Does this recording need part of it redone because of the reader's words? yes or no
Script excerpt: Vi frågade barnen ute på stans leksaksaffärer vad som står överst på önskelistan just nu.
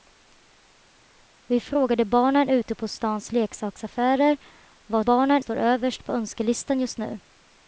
yes